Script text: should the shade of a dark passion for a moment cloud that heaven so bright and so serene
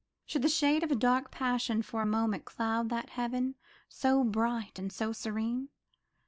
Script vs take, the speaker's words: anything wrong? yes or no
no